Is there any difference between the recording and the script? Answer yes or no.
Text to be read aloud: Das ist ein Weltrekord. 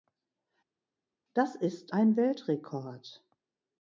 no